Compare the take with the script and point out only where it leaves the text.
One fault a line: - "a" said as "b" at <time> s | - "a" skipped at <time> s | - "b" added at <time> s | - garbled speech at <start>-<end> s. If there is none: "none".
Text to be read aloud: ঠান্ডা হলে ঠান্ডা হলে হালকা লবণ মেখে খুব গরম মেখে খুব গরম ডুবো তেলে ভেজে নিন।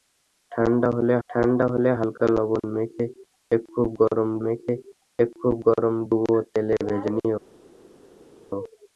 none